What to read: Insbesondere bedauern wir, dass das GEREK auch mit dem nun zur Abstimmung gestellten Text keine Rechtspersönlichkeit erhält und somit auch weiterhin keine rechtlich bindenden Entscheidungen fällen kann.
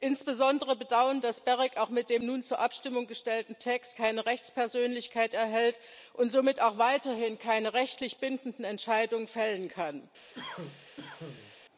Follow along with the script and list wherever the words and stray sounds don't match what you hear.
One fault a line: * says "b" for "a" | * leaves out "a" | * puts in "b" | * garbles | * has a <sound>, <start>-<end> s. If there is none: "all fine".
* leaves out "wir"
* has a cough, 10.3-11.6 s